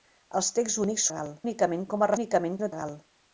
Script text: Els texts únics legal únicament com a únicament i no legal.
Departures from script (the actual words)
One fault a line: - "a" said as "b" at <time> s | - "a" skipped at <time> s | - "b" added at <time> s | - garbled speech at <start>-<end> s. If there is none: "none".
none